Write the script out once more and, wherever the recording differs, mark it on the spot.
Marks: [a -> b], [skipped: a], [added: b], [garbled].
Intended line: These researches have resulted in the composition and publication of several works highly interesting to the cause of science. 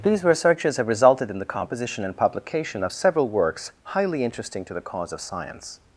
These researches have resulted in the composition and publication of several works highly interesting to the cause of science.